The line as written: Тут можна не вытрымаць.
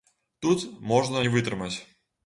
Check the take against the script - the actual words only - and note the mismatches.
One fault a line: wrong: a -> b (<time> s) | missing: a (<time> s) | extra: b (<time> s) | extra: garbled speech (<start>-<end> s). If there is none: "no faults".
no faults